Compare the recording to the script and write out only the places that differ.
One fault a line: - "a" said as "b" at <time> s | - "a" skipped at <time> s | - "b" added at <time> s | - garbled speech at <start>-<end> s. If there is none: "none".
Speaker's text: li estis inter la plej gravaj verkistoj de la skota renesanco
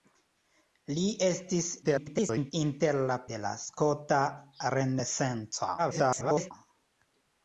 - garbled speech at 1.8-2.5 s
- "plej gravaj verkistoj" skipped at 3.2 s
- garbled speech at 5.8-6.5 s